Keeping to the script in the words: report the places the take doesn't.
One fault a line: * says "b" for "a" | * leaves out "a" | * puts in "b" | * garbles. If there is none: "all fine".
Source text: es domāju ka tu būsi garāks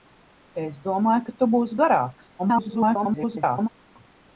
* garbles